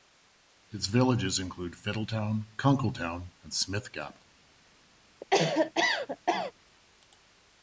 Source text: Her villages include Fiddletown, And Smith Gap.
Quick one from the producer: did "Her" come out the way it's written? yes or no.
no